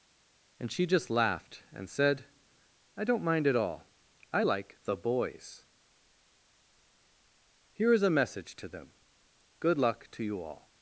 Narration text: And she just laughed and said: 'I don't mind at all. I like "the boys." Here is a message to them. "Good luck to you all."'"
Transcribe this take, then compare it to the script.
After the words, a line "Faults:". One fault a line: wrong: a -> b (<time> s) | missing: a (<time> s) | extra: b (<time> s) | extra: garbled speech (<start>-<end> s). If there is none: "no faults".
And she just laughed and said: 'I don't mind at all. I like "the boys." Here is a message to them. "Good luck to you all."'"
Faults:
no faults